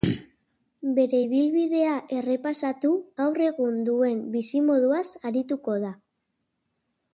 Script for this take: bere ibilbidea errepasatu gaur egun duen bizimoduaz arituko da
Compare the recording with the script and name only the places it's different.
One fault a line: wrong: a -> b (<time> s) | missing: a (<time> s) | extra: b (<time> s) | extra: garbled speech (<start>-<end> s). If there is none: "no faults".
no faults